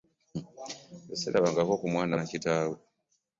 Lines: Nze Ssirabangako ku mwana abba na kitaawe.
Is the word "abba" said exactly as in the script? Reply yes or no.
no